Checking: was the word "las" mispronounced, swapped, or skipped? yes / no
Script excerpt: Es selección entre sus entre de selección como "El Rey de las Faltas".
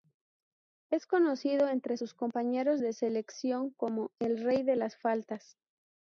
no